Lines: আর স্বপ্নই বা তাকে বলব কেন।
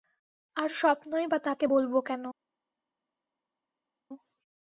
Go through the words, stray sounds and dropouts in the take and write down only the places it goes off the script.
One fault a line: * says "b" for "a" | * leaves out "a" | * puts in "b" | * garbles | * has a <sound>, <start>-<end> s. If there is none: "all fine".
all fine